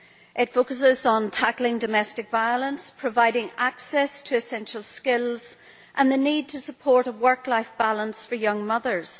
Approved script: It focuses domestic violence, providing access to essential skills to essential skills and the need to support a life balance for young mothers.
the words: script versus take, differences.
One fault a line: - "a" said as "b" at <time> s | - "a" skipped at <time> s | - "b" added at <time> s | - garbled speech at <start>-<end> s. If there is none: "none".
- "on tackling" added at 1.1 s
- "to essential skills" skipped at 5.6 s
- "work" added at 7.1 s